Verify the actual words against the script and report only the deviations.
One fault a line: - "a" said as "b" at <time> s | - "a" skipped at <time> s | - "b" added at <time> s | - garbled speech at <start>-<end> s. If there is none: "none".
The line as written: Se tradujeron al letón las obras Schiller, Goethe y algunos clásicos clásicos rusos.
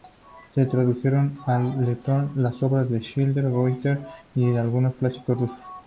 - "de" added at 2.9 s
- "clásicos" skipped at 5.4 s